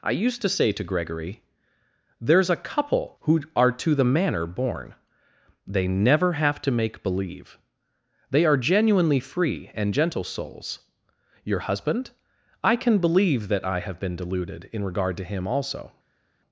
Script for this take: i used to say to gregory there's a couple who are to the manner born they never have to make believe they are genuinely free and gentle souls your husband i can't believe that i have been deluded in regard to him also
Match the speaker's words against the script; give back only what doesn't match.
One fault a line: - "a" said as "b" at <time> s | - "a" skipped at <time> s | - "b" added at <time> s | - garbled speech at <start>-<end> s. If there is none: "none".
- "can't" said as "can" at 12.8 s